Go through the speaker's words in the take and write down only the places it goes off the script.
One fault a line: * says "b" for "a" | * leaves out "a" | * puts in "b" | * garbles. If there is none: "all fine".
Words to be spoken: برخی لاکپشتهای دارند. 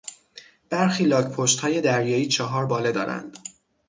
* puts in "دریایی چهار باله"